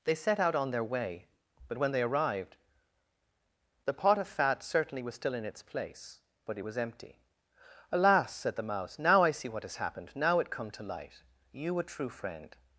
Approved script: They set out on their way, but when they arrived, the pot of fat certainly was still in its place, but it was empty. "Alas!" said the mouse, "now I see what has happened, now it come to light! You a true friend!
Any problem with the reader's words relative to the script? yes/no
no